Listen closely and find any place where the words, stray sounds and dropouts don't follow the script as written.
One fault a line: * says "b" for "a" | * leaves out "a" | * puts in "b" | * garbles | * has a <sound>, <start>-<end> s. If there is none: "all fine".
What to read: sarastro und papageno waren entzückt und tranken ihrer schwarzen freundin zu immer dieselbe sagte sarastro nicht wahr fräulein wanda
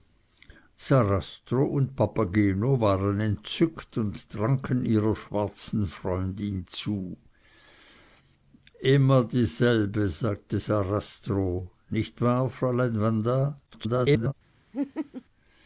* garbles
* has a laugh, 14.7-15.2 s